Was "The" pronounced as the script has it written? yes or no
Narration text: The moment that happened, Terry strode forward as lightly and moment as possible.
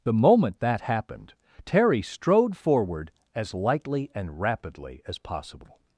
yes